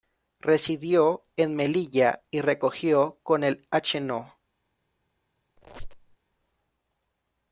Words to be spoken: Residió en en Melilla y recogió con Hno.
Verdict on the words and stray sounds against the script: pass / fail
fail